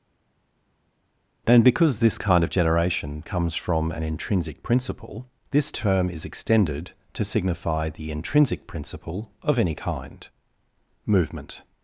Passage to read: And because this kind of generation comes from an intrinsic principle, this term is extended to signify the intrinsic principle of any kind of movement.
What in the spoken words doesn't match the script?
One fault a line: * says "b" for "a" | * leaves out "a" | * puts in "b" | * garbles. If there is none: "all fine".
* leaves out "of"